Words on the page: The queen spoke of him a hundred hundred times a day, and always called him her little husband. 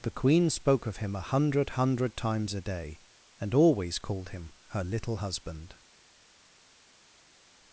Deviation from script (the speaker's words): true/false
false